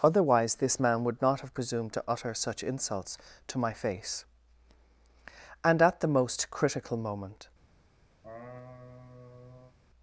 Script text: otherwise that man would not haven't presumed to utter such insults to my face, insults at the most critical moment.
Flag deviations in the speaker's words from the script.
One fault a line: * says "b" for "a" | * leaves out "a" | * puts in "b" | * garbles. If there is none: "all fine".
* says "this" for "that"
* says "have" for "haven't"
* says "and" for "insults"